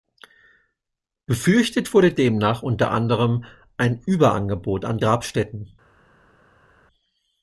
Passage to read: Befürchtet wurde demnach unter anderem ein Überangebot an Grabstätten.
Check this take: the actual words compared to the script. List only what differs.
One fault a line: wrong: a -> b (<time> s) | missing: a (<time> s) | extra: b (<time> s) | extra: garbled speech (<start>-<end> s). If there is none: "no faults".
no faults